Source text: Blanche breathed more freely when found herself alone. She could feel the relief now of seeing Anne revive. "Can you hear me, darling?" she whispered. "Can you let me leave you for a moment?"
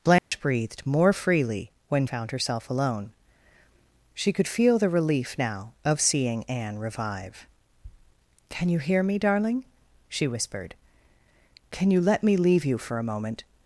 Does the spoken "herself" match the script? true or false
true